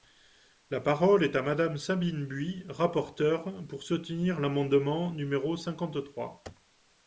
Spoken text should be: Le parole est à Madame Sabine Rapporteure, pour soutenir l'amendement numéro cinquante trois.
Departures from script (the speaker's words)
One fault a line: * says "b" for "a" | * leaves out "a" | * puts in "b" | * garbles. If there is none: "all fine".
* says "La" for "Le"
* puts in "Buis"